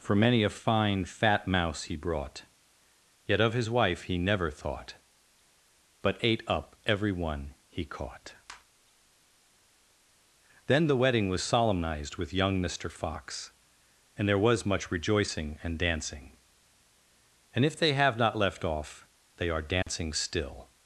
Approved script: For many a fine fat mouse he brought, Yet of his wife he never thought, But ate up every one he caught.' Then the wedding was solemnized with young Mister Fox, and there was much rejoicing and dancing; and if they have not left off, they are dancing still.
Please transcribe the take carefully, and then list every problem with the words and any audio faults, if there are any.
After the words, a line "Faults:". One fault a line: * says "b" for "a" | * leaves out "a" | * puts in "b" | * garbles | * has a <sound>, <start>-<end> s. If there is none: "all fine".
For many a fine fat mouse he brought, Yet of his wife he never thought, But ate up every one he caught.' Then the wedding was solemnized with young Mister Fox, and there was much rejoicing and dancing; and if they have not left off, they are dancing still.
Faults:
* has a dropout, 19.8-19.9 s